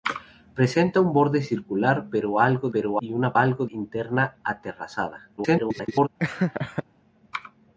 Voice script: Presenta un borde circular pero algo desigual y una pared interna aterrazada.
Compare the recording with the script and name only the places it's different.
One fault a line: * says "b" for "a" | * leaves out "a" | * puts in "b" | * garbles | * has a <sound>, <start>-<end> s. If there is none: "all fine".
* says "pero" for "desigual"
* says "algo" for "pared"
* garbles
* has a laugh, 6.2-6.8 s